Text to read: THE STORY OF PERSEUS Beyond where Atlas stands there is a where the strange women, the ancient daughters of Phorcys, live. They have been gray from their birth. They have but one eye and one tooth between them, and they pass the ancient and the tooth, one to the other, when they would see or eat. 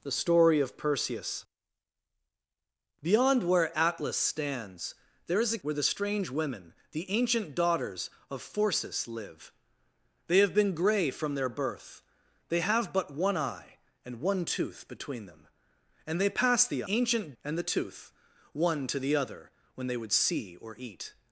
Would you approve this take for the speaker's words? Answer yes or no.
yes